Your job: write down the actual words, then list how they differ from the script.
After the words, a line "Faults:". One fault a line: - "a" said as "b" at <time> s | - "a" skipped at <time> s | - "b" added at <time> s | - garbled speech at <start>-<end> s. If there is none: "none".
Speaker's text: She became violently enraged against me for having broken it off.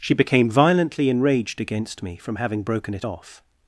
She became violently enraged against me from having broken it off.
Faults:
- "for" said as "from" at 2.2 s